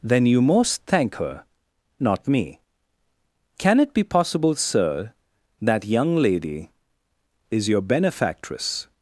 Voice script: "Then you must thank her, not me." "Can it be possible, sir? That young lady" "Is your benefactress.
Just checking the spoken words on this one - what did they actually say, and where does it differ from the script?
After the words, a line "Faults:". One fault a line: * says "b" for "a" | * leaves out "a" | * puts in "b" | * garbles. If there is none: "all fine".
"Then you most thank her, not me." "Can it be possible, sir? That young lady" "Is your benefactress.
Faults:
* says "most" for "must"